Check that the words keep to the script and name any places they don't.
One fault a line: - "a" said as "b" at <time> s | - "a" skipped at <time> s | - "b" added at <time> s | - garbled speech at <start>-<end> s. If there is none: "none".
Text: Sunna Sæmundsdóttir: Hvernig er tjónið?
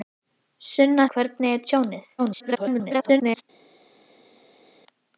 - "Sæmundsdóttir" skipped at 1.1 s
- garbled speech at 2.2-3.4 s